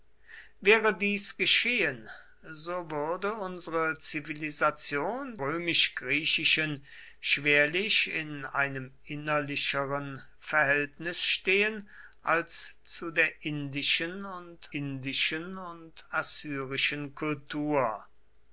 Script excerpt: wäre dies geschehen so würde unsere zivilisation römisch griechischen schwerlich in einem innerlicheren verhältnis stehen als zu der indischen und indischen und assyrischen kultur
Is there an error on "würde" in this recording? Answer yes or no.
no